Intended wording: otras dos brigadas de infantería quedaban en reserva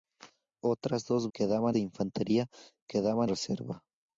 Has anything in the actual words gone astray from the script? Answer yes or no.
yes